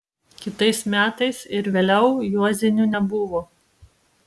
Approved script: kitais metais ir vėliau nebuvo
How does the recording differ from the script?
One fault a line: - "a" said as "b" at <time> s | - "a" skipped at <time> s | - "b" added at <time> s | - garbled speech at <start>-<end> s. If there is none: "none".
- "juozinių" added at 2.4 s